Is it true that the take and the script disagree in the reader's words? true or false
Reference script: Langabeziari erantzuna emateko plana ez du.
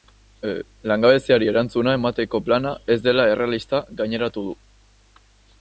true